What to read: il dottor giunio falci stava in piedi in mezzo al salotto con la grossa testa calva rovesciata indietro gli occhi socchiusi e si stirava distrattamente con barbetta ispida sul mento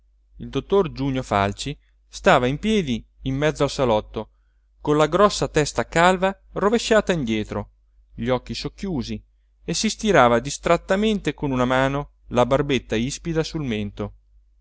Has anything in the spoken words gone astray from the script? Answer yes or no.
yes